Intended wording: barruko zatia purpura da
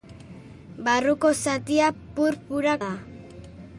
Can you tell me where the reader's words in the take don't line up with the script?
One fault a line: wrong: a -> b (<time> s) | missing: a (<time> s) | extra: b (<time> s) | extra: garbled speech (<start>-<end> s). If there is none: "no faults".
no faults